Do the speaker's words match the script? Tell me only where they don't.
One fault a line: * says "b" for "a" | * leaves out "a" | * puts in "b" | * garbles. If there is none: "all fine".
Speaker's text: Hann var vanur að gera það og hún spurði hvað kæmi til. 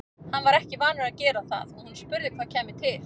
* puts in "ekki"